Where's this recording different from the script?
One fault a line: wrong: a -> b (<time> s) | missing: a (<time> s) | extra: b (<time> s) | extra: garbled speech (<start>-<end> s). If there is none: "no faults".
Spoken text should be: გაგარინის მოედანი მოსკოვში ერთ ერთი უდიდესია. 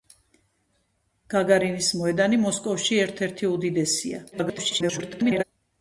extra: garbled speech (4.3-5.4 s)